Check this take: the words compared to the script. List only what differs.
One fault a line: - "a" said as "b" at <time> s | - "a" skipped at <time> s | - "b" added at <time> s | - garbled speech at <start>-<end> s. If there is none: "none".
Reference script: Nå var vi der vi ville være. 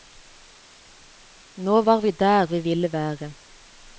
none